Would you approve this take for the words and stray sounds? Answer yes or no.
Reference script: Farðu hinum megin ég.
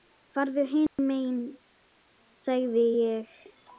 no